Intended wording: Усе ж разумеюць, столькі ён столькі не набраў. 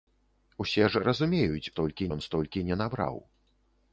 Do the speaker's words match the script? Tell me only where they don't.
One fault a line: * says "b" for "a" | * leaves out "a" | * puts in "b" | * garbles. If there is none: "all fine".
all fine